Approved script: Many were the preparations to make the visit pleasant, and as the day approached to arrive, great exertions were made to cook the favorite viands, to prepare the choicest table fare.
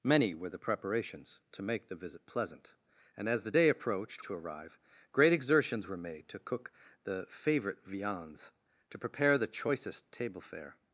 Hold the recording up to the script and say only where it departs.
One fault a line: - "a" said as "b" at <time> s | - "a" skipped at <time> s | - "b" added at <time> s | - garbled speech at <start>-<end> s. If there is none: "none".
none